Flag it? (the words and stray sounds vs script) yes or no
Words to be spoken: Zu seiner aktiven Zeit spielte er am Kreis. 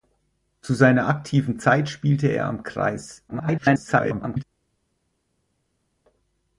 yes